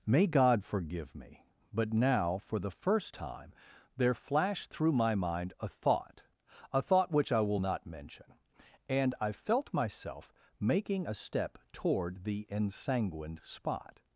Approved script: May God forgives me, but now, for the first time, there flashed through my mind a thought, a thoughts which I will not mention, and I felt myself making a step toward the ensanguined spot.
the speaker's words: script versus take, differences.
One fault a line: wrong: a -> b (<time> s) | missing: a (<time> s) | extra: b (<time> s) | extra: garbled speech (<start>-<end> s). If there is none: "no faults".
wrong: forgives -> forgive (0.6 s)
wrong: thoughts -> thought (6.8 s)